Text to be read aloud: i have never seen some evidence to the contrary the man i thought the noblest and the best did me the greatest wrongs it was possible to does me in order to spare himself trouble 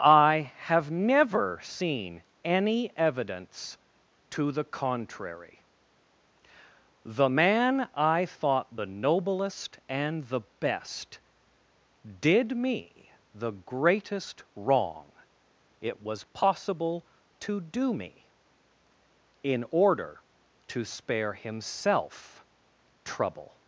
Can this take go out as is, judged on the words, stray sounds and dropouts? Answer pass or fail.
fail